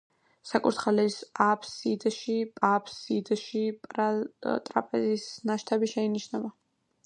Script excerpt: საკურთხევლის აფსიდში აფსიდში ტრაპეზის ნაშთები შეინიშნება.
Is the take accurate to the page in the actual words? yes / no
yes